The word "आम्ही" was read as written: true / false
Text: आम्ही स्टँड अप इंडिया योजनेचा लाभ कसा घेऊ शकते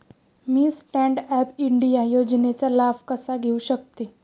false